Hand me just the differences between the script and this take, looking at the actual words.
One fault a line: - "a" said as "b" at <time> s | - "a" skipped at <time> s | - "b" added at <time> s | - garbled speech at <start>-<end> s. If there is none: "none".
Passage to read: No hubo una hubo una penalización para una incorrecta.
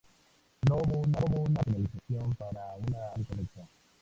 none